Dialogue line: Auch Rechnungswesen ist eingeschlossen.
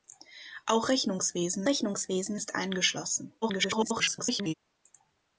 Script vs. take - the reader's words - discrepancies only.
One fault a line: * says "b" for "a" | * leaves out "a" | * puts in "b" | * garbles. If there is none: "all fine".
* puts in "Rechnungswesen"
* garbles